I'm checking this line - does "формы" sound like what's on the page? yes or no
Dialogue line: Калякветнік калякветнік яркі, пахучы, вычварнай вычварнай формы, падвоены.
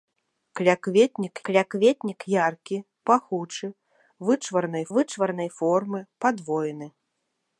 yes